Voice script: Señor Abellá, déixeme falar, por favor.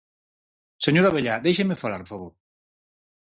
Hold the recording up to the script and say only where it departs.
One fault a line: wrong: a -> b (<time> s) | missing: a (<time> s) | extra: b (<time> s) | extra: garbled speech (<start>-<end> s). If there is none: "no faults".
missing: por (2.0 s)